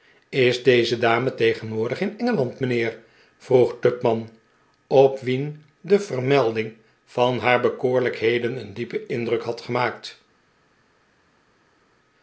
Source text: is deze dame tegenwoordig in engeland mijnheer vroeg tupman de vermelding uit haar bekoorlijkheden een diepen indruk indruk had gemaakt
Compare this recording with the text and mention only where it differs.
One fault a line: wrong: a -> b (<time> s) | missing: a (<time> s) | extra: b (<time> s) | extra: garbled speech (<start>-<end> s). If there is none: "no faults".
extra: op wien (4.9 s)
wrong: uit -> van (7.0 s)
missing: indruk (9.4 s)